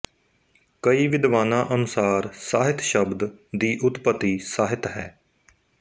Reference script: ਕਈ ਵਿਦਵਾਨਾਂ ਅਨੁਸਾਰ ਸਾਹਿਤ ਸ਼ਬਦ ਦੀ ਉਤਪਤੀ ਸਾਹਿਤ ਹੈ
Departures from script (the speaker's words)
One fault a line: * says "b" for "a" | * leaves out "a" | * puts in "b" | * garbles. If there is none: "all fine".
all fine